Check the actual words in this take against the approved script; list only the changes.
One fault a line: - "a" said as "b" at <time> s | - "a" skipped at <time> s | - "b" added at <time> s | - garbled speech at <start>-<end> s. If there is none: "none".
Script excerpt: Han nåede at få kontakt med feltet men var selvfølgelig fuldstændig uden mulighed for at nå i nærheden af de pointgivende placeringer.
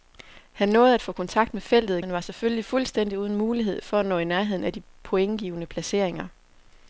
none